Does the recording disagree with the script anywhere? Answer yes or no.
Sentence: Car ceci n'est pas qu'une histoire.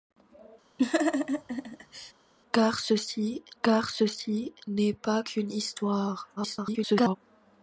yes